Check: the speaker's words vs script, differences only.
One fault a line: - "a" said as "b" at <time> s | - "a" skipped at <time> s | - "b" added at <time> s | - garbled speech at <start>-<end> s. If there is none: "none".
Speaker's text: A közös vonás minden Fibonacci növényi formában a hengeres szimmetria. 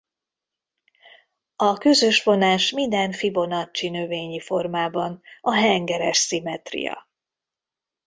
none